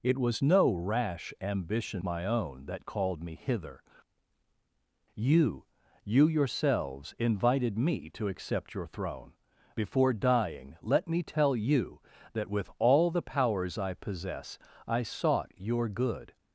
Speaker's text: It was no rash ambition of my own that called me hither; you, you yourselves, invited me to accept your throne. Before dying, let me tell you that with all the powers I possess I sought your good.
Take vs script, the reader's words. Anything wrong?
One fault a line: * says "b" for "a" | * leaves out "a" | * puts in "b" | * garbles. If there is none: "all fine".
* leaves out "of"